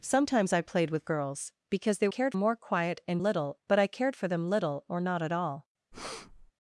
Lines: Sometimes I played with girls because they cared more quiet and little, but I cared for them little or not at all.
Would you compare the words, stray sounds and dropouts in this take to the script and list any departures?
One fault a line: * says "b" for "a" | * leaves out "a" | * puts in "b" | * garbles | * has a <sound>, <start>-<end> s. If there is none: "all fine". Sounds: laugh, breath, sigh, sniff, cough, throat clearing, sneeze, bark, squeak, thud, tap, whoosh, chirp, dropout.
* has a breath, 5.9-6.5 s